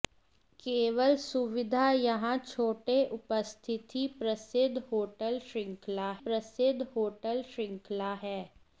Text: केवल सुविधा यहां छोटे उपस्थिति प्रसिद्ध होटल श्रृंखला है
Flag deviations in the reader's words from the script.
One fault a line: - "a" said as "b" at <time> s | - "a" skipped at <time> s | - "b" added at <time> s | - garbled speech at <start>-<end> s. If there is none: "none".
- "प्रसिद्ध होटल श्रृंखला" added at 6.2 s